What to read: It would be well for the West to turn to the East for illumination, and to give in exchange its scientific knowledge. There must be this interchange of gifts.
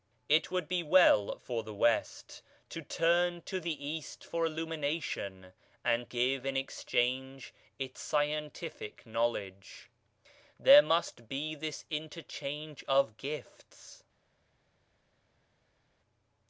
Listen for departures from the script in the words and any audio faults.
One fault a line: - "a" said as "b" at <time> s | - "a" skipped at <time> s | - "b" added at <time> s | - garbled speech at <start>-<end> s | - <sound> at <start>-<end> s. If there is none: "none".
- "to" skipped at 6.1 s